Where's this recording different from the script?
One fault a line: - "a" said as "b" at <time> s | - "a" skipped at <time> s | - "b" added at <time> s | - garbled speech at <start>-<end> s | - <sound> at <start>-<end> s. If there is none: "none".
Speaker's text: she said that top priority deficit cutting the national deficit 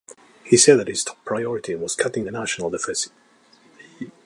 - "she" said as "he" at 0.4 s
- "his" added at 0.9 s
- "deficit" said as "was" at 1.8 s